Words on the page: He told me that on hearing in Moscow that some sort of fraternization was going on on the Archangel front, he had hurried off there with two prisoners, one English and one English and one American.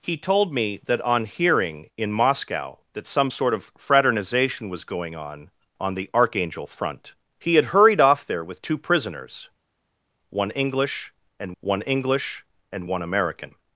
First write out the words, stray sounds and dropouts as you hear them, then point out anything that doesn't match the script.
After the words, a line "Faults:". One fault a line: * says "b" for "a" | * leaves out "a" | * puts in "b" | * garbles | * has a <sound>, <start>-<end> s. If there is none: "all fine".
He told me that on hearing in Moscow that some sort of fraternization was going on on the Archangel front, he had hurried off there with two prisoners, one English and one English and one American.
Faults:
all fine